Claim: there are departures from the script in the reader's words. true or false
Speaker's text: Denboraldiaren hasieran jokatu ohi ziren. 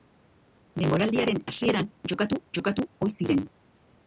true